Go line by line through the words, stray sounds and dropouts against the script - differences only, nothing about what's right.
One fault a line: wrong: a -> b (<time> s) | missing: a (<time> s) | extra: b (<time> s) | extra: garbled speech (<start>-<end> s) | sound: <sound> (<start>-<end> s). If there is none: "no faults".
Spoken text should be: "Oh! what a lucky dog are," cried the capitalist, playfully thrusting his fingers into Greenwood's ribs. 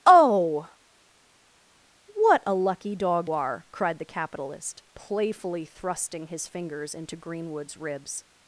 no faults